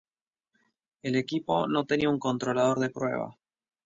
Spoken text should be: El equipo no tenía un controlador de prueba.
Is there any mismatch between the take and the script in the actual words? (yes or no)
no